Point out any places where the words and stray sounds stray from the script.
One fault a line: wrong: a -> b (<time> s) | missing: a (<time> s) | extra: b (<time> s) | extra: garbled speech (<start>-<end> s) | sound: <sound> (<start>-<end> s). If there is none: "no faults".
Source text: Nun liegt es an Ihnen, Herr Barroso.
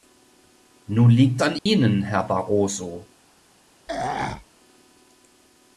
missing: es (1.4 s)
sound: dropout (1.6-1.7 s)
sound: throat clearing (3.9-4.4 s)